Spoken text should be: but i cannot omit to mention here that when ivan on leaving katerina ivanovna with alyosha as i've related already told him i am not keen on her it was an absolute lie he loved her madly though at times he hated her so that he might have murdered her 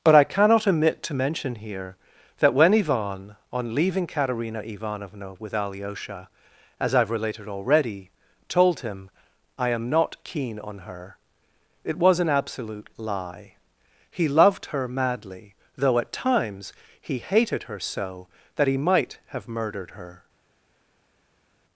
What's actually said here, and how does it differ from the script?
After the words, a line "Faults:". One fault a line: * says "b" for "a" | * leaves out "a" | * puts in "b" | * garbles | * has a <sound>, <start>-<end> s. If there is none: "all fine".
but i cannot omit to mention here that when ivan on leaving katerina ivanovna with alyosha as i've related already told him i am not keen on her it was an absolute lie he loved her madly though at times he hated her so that he might have murdered her
Faults:
all fine